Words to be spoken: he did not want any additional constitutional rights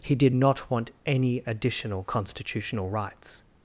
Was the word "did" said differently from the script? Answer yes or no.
no